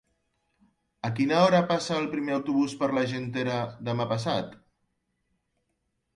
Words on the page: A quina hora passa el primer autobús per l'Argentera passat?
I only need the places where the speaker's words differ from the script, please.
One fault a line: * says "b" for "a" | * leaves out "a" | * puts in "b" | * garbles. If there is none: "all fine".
* puts in "demà"